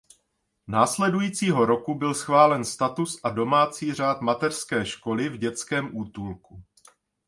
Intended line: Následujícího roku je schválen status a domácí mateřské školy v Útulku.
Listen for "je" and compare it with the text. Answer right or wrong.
wrong